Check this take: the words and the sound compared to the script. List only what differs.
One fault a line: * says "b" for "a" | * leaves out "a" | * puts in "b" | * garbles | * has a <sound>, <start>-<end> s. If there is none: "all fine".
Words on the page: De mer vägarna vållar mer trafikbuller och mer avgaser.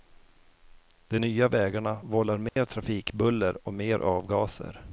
* says "nya" for "mer"
* has a dropout, 2.5-2.6 s